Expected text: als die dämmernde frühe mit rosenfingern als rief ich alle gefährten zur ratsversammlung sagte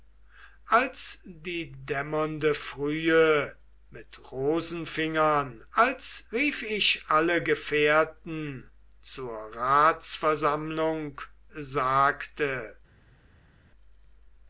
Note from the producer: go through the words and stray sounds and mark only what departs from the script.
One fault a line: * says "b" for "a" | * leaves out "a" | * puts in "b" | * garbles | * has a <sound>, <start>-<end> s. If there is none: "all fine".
all fine